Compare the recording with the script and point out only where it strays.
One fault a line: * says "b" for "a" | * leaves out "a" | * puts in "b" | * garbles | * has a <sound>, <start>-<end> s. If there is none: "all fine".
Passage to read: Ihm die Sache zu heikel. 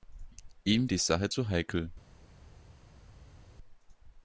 all fine